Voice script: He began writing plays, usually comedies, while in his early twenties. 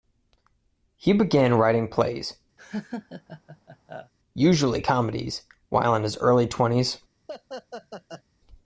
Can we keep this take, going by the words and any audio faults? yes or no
no